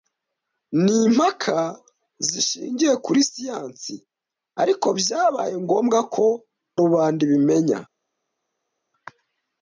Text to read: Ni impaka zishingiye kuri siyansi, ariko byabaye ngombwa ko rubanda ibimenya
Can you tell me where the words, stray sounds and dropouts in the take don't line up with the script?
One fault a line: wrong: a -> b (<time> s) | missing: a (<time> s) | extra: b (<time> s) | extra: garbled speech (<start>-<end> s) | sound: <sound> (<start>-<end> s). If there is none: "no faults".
no faults